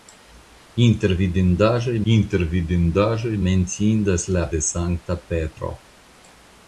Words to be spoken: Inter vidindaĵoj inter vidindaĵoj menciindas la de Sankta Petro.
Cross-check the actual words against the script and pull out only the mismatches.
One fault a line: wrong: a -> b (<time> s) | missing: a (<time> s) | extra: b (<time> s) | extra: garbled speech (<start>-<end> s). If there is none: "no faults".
no faults